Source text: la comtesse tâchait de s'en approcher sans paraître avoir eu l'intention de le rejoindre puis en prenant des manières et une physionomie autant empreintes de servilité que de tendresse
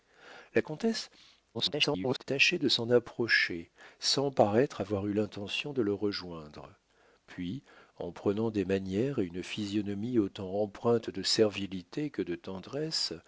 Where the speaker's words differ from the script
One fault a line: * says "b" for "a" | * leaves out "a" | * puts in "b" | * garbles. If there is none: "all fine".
* garbles